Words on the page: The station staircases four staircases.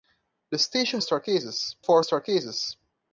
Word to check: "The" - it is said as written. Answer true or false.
true